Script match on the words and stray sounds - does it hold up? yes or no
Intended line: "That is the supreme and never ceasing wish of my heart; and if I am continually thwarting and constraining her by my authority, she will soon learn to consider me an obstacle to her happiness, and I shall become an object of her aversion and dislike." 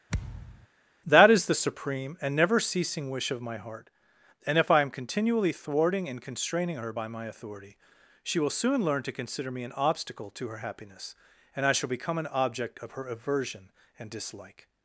no